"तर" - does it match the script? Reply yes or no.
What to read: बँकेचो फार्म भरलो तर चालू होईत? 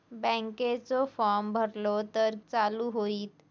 yes